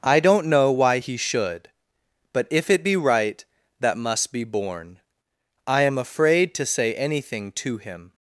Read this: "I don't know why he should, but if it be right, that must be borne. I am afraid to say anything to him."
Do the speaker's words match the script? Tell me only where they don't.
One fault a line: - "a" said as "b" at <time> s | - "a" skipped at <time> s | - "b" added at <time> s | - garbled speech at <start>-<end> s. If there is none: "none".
none